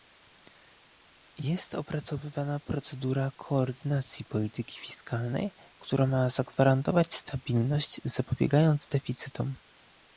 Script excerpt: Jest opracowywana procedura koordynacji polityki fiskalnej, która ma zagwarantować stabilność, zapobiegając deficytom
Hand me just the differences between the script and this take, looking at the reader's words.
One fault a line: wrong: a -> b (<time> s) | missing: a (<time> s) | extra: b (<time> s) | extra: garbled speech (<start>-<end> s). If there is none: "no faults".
no faults